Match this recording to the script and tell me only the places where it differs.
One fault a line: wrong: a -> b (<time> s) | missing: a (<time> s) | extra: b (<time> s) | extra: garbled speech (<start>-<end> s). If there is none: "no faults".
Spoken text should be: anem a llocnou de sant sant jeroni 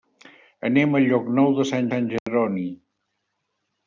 no faults